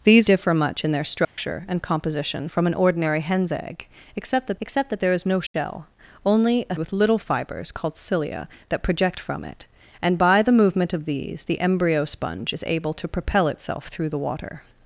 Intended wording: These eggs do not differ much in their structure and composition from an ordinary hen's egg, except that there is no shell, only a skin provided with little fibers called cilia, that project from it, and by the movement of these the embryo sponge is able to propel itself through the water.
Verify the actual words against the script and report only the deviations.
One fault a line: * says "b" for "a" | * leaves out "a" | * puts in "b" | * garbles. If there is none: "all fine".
* leaves out "eggs do not"
* puts in "except that"
* leaves out "skin provided"